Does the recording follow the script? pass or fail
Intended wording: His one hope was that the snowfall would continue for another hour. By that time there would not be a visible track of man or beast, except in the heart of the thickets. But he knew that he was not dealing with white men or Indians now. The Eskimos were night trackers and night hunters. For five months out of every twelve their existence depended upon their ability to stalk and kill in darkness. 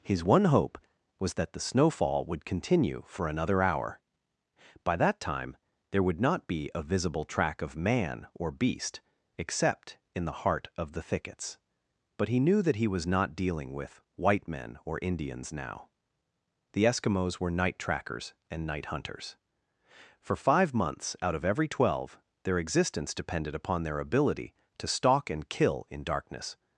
pass